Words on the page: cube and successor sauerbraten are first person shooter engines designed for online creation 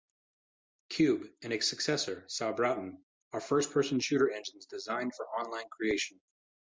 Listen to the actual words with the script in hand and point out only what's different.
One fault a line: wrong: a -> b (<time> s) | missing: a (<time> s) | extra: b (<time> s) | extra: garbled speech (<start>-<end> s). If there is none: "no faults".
extra: its (1.5 s)